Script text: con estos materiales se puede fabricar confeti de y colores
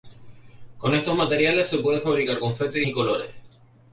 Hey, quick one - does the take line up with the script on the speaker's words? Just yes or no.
yes